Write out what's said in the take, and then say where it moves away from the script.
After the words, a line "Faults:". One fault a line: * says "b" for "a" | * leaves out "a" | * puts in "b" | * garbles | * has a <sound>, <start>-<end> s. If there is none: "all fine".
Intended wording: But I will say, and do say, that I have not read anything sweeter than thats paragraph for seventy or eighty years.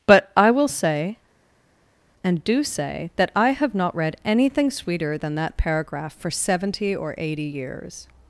But I will say, and do say, that I have not read anything sweeter than that paragraph for seventy or eighty years.
Faults:
* says "that" for "thats"